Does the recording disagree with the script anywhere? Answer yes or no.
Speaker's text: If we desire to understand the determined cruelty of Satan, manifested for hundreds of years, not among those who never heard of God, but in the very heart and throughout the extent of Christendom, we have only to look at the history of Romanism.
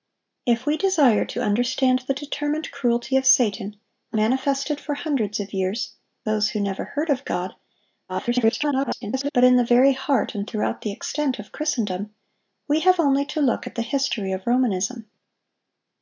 yes